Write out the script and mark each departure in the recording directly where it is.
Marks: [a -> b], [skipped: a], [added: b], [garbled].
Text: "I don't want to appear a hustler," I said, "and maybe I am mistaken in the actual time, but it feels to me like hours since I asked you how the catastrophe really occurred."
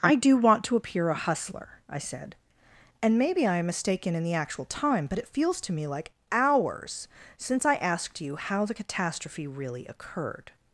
"I [don't -> do] want to appear a hustler," I said, "and maybe I am mistaken in the actual time, but it feels to me like hours since I asked you how the catastrophe really occurred."